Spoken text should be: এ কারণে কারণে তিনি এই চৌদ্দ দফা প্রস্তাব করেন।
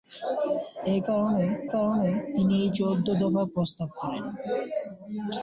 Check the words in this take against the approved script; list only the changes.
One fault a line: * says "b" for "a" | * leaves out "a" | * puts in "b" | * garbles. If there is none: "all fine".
all fine